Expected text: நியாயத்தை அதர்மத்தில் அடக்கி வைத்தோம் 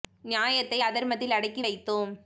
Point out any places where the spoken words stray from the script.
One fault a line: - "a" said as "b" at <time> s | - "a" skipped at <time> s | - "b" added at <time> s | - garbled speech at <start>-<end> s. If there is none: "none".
none